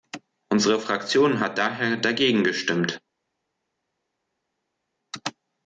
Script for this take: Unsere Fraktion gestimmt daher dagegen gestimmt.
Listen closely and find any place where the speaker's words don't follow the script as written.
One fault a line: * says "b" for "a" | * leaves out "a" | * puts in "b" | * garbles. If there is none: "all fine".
* says "hat" for "gestimmt"